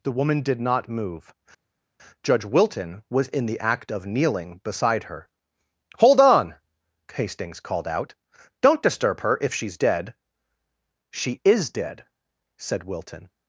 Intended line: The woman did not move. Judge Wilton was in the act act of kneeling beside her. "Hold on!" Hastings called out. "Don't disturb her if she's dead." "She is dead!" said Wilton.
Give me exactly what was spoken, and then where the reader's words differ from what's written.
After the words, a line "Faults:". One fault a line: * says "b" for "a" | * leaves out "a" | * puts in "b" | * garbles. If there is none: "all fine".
The woman did not move. Judge Wilton was in the act of kneeling beside her. "Hold on!" Hastings called out. "Don't disturb her if she's dead." "She is dead!" said Wilton.
Faults:
* leaves out "act"